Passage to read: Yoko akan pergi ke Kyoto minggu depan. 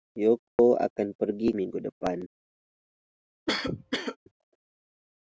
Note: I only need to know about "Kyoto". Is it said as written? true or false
false